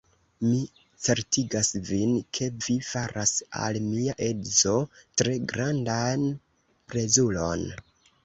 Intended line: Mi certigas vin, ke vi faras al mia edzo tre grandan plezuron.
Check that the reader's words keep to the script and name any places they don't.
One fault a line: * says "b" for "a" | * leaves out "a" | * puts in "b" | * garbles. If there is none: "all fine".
all fine